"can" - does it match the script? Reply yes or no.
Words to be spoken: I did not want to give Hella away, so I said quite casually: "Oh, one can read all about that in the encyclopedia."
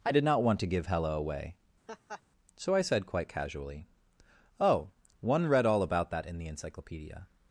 no